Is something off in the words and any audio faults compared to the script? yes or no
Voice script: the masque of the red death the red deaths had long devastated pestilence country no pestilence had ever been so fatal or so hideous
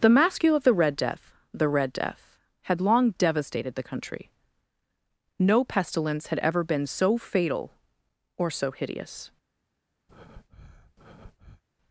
yes